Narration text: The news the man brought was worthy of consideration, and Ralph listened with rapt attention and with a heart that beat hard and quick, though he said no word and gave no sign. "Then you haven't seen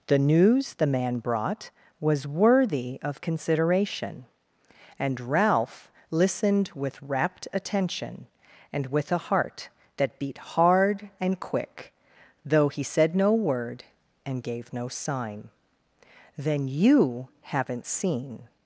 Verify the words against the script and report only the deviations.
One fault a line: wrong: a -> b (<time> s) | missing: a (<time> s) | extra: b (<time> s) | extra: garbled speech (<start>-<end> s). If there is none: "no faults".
no faults